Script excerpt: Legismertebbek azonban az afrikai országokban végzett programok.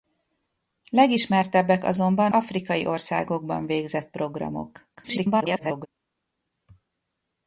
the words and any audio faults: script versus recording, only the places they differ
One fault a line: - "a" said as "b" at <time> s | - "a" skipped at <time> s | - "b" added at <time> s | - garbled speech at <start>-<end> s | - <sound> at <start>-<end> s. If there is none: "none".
- "az" skipped at 2.3 s
- garbled speech at 5.0-5.9 s